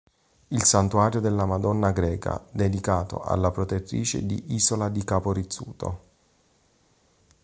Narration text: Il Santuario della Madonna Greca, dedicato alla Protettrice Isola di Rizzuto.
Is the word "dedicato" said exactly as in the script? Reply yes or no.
yes